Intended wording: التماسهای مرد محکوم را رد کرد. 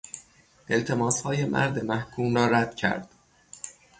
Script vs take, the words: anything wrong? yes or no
no